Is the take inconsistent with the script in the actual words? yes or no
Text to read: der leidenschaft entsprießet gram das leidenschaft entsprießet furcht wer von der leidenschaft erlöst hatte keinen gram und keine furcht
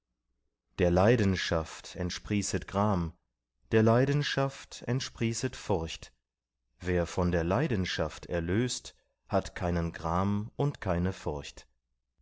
yes